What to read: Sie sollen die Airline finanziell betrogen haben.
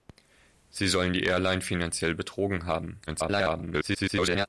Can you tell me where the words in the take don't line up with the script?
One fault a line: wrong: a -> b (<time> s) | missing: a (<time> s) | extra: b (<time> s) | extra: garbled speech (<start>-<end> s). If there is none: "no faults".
extra: garbled speech (3.1-4.5 s)